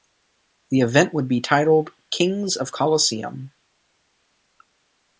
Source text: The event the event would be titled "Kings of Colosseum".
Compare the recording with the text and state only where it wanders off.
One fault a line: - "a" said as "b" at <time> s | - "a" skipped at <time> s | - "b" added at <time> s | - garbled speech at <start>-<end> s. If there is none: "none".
- "the event" skipped at 1.1 s